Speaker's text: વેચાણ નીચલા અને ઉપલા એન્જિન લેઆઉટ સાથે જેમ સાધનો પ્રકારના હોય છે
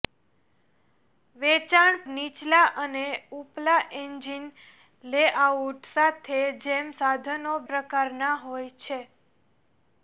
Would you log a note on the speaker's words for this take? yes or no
no